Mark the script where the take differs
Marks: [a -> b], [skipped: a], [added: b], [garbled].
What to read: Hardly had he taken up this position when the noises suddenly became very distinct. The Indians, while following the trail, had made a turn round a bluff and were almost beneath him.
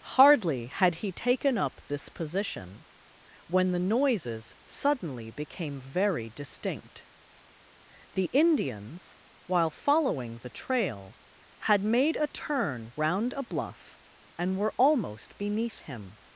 Hardly had he taken up this position when the noises suddenly became very distinct. The Indians, while following the trail, had made a turn round a bluff and were almost beneath him.